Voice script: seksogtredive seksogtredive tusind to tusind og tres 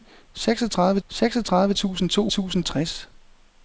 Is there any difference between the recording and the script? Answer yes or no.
no